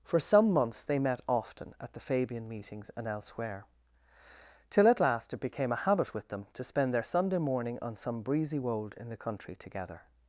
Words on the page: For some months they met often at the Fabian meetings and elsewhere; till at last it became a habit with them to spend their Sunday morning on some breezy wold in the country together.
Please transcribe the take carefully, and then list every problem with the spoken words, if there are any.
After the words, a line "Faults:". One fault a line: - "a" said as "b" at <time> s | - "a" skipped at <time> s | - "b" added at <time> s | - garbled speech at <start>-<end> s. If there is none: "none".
For some months they met often at the Fabian meetings and elsewhere; till at last it became a habit with them to spend their Sunday morning on some breezy wold in the country together.
Faults:
none